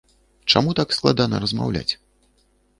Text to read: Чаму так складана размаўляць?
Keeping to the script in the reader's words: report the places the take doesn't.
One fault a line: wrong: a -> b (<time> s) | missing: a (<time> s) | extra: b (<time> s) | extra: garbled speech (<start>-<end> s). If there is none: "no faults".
no faults